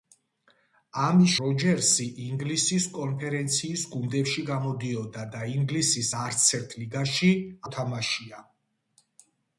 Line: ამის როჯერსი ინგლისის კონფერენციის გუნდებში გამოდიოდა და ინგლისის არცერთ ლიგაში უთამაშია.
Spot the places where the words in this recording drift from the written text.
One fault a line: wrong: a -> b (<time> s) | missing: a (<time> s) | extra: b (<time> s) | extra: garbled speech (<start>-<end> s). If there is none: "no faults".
no faults